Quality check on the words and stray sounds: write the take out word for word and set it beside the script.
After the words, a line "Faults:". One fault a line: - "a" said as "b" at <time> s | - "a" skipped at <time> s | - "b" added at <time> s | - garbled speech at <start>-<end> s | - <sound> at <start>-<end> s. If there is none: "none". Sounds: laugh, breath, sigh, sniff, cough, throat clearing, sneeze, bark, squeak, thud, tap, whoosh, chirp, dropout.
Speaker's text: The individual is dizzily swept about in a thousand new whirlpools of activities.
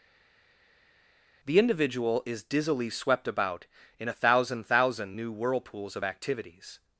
The individual is dizzily swept about in a thousand thousand new whirlpools of activities.
Faults:
- "thousand" added at 4.6 s